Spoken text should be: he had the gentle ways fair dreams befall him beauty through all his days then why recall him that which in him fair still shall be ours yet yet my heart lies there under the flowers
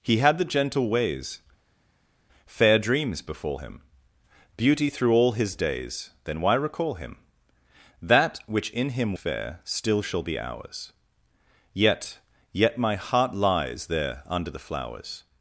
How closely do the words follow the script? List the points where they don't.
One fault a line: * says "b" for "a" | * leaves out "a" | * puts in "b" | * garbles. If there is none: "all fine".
all fine